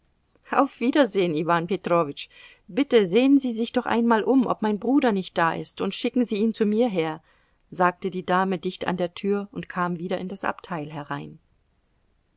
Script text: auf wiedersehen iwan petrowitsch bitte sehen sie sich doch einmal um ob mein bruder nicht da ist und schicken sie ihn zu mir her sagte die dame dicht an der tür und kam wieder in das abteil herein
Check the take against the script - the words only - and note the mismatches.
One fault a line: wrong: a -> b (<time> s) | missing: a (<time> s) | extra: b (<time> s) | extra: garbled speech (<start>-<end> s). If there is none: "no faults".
no faults